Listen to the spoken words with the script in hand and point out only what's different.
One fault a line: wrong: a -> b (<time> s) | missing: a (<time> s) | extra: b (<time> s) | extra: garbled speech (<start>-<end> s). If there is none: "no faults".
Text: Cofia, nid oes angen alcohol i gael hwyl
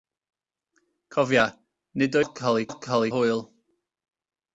missing: oes angen (2.2 s)
wrong: gael -> alcohol (2.7 s)